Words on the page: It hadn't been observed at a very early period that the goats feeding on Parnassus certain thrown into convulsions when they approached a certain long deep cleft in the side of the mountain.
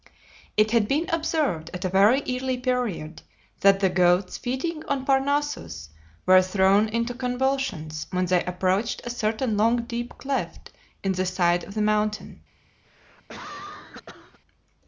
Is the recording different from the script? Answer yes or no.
yes